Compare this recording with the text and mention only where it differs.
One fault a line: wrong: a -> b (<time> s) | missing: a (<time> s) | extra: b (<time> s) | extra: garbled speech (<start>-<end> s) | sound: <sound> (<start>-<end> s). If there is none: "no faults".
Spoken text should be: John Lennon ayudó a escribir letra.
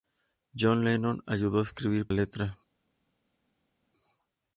no faults